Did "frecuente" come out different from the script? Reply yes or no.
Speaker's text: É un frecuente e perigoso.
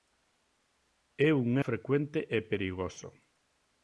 no